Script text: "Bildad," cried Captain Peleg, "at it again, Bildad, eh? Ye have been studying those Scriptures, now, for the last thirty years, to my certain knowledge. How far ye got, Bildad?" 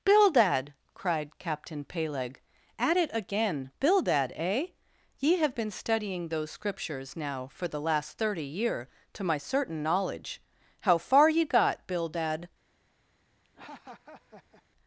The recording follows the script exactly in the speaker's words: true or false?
false